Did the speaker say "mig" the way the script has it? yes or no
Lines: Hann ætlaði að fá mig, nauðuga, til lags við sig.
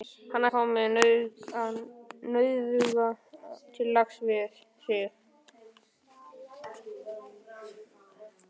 yes